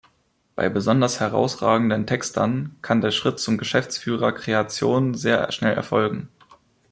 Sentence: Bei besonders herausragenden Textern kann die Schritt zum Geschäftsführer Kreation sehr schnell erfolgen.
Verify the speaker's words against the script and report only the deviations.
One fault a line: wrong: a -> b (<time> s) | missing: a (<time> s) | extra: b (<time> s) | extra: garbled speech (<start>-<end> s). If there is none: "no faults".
wrong: die -> der (3.0 s)